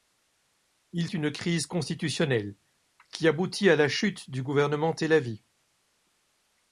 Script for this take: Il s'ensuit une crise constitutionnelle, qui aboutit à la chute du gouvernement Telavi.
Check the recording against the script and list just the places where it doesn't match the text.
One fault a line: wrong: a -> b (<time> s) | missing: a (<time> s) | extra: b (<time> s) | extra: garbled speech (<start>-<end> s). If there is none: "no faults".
missing: s'ensuit (1.1 s)